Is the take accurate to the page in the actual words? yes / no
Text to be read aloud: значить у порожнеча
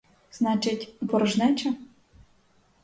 yes